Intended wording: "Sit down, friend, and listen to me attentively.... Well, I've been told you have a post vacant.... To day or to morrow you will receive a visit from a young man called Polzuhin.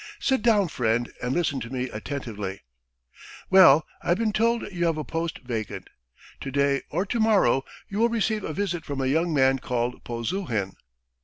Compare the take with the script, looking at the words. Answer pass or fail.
pass